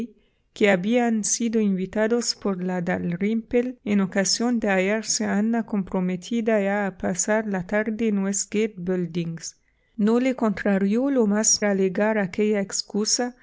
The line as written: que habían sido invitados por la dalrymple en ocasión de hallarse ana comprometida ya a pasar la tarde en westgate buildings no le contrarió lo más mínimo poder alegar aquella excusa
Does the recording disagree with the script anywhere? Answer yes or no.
yes